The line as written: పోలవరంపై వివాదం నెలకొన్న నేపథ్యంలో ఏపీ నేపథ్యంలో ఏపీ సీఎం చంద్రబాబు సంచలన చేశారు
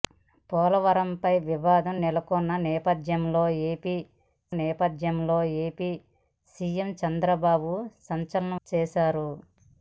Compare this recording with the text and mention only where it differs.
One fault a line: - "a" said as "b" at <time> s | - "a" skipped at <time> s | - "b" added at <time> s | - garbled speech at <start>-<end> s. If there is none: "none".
none